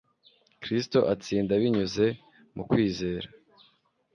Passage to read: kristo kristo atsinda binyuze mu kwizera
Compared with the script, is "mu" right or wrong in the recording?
right